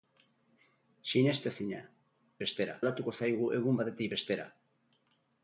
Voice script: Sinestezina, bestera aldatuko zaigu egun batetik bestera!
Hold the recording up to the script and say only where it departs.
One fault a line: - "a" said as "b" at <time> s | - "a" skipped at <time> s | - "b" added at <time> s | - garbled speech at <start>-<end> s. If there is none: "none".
none